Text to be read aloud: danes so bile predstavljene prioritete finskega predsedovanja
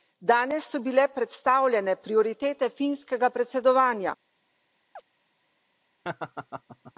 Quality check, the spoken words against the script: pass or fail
pass